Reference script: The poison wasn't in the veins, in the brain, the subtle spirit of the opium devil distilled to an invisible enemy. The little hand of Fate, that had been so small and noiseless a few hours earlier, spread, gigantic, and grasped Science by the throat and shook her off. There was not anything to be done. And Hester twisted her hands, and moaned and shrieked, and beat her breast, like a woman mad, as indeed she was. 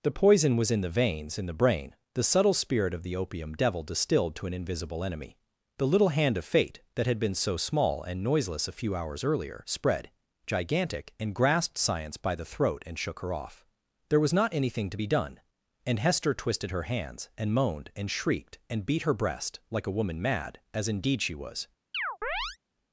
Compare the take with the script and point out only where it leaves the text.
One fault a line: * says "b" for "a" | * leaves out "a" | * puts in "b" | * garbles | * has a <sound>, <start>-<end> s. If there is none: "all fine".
* says "was" for "wasn't"
* has a chirp, 21.9-22.6 s